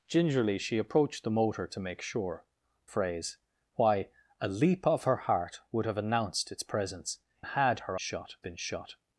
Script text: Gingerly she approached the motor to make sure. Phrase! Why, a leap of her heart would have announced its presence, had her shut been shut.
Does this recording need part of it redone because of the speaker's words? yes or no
no